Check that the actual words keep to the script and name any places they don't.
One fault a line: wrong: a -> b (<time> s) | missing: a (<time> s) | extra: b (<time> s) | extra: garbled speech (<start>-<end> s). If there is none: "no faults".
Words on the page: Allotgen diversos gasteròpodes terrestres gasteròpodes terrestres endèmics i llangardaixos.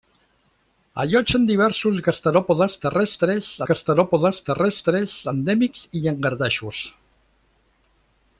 no faults